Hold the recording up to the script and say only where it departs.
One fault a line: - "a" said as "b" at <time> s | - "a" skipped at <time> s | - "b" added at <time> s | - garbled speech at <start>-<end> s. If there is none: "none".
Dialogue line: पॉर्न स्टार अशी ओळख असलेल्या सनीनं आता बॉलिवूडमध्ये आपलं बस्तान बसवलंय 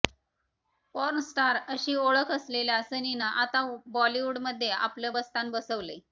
none